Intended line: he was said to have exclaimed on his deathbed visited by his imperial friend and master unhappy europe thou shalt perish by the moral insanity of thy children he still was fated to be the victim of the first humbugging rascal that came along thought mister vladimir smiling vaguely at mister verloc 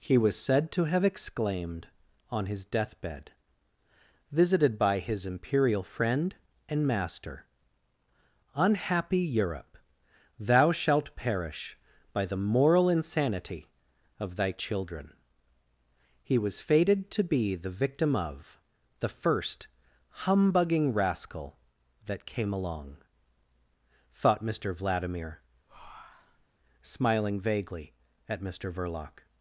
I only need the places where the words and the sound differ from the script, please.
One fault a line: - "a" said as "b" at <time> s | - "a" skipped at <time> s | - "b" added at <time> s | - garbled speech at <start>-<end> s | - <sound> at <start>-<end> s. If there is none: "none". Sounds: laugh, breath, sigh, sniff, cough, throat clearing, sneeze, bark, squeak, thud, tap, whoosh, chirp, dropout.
- "still" skipped at 16.4 s
- breath at 25.7-26.5 s